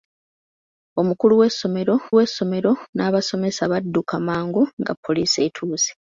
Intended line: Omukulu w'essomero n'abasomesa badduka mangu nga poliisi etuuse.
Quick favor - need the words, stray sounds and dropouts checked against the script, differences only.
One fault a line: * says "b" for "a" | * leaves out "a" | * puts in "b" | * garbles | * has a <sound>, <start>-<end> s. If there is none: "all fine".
* puts in "w'essomero"